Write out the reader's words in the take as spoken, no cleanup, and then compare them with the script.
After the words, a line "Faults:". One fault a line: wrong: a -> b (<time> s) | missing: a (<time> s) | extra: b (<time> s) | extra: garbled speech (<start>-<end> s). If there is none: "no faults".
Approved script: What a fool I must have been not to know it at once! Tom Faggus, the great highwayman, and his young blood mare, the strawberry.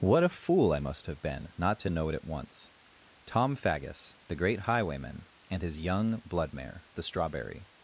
What a fool I must have been not to know it at once! Tom Faggus, the great highwayman, and his young blood mare, the strawberry.
Faults:
no faults